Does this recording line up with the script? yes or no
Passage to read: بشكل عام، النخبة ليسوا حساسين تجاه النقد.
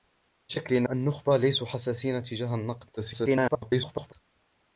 no